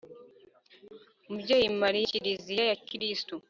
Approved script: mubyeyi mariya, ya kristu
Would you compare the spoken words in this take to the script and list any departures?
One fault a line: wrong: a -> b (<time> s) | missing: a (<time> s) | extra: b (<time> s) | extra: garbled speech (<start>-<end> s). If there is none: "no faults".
extra: kiliziya (2.1 s)